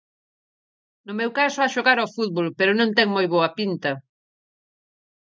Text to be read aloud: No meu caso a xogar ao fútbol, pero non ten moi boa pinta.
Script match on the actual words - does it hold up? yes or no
yes